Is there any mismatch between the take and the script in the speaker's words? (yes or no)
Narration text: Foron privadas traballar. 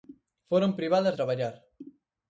no